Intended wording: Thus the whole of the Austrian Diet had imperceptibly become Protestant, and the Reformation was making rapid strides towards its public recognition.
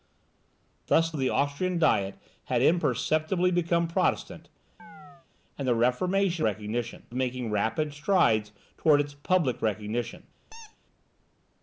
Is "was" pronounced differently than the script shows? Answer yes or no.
yes